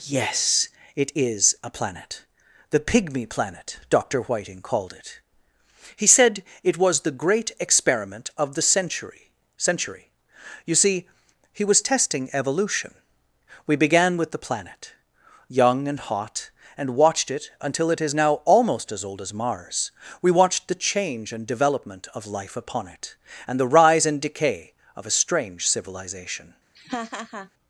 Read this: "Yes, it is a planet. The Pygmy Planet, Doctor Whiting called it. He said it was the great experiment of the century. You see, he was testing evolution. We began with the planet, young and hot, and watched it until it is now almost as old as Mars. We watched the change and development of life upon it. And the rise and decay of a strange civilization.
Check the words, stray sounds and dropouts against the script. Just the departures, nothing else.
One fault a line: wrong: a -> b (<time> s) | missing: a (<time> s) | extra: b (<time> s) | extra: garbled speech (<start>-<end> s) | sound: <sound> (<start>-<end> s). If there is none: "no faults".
extra: century (9.6 s)
sound: laugh (26.7-27.5 s)